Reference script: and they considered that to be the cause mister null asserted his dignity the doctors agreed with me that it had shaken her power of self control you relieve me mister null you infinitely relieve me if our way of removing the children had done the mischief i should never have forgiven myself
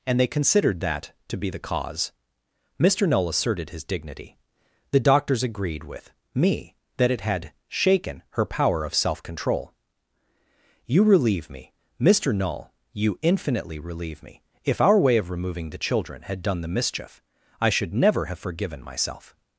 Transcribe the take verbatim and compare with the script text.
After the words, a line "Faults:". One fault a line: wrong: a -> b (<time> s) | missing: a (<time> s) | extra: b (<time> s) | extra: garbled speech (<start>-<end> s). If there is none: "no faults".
and they considered that to be the cause mister null asserted his dignity the doctors agreed with me that it had shaken her power of self control you relieve me mister null you infinitely relieve me if our way of removing the children had done the mischief i should never have forgiven myself
Faults:
no faults